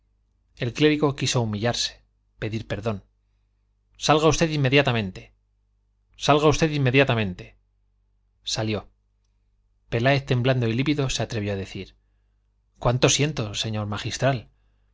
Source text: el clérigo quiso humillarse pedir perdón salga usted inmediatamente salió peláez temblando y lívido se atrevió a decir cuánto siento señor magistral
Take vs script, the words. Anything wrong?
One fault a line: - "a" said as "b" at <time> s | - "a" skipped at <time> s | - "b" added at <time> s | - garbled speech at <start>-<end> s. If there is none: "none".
- "salga usted inmediatamente" added at 6.2 s